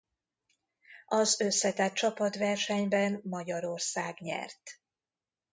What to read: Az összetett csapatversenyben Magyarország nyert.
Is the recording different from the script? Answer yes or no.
no